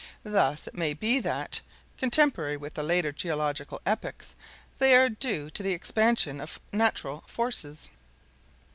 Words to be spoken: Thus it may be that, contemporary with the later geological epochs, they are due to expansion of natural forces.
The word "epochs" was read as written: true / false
true